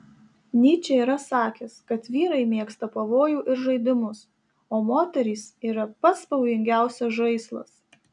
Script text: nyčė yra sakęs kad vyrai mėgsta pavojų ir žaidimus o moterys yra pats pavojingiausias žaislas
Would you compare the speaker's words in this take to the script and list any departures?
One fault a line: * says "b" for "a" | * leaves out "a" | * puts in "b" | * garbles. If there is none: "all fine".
all fine